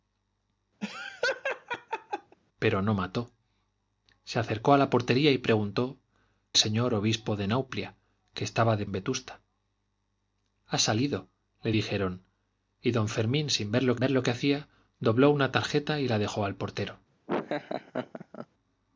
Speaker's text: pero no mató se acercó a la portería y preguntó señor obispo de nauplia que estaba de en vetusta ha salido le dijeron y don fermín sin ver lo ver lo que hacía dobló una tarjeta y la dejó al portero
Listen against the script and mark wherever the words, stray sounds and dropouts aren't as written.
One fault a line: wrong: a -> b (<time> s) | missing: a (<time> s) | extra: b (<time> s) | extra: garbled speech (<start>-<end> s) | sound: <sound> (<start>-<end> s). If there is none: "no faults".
sound: laugh (0.8-2.4 s)
sound: laugh (17.3-18.5 s)